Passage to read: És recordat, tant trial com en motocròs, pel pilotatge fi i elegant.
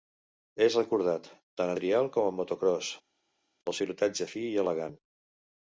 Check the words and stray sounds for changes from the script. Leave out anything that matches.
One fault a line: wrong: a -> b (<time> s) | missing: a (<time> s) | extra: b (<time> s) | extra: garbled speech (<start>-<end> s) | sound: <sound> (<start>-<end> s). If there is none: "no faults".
no faults